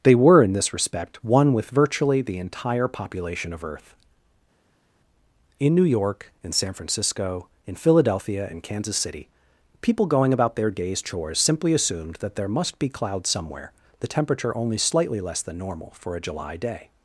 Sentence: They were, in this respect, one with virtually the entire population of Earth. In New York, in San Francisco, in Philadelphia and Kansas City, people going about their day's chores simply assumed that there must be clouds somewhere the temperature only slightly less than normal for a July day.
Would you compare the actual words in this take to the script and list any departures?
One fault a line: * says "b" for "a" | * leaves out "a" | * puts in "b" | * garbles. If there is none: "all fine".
all fine